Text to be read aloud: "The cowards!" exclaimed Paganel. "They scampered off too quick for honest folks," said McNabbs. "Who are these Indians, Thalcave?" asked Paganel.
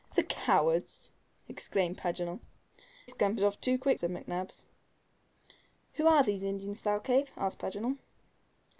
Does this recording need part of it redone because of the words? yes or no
yes